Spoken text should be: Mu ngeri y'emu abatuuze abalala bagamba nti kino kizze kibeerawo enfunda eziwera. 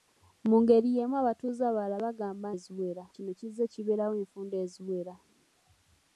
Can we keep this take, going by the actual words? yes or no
no